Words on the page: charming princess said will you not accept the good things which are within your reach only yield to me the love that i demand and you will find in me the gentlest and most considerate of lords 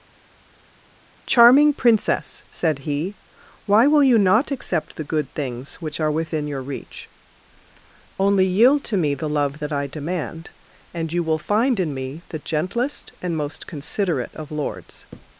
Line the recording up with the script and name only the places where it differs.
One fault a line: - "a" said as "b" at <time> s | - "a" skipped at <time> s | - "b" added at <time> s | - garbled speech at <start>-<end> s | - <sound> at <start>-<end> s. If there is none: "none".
- "he why" added at 2.8 s